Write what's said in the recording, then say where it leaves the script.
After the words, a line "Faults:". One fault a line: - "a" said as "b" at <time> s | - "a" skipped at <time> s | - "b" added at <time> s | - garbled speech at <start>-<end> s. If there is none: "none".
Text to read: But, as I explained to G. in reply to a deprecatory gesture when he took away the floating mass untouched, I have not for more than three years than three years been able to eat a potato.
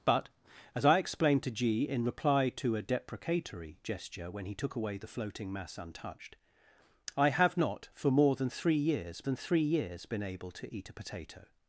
But, as I explained to G. in reply to a deprecatory gesture when he took away the floating mass untouched, I have not for more than three years than three years been able to eat a potato.
Faults:
none